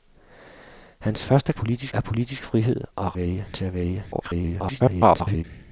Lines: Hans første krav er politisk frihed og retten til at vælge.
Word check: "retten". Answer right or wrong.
wrong